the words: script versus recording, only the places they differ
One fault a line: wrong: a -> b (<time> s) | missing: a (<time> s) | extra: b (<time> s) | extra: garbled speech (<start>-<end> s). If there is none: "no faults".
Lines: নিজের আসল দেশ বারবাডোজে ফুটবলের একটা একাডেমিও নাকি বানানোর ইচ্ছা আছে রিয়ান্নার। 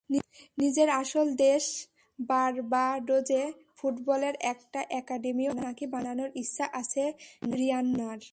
no faults